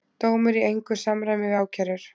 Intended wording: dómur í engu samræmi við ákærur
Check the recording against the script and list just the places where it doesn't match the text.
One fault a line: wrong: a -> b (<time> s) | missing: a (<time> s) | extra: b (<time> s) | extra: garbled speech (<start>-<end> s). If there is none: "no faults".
no faults